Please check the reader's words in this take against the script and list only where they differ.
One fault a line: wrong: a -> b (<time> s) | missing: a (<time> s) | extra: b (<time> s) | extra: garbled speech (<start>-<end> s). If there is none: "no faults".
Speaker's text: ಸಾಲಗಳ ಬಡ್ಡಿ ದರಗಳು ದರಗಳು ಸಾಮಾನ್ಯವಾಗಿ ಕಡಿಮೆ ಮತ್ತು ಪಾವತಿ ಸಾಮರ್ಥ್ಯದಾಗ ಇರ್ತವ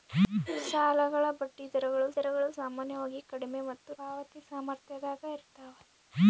no faults